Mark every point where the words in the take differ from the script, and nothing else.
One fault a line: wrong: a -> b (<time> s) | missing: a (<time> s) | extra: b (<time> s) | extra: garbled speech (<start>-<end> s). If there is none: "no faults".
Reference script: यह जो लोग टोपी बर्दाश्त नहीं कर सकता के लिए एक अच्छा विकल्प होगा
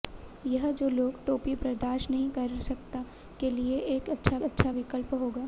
extra: अच्छा (4.4 s)